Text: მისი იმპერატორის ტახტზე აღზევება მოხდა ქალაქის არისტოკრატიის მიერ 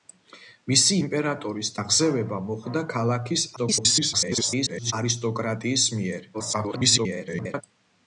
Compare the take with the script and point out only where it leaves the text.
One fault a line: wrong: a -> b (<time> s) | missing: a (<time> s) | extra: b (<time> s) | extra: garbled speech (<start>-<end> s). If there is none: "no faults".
missing: ტახტზე (1.7 s)
extra: garbled speech (3.6-4.9 s)
extra: garbled speech (6.3-7.6 s)